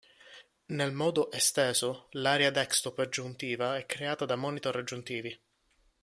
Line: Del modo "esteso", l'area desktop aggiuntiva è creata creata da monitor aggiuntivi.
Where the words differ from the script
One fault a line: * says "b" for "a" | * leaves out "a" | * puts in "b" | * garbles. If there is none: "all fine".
* says "Nel" for "Del"
* leaves out "creata"